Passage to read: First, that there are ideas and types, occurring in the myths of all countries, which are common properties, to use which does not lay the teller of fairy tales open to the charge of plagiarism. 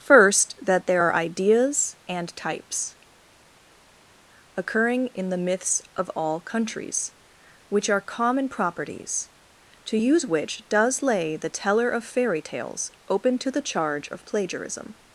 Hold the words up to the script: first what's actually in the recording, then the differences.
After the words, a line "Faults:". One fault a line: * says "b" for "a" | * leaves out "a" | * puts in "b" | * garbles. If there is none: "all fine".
First, that there are ideas and types, occurring in the myths of all countries, which are common properties, to use which does lay the teller of fairy tales open to the charge of plagiarism.
Faults:
* leaves out "not"